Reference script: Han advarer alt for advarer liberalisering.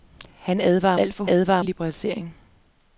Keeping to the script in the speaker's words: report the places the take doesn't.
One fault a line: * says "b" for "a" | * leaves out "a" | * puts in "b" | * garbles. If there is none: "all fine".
all fine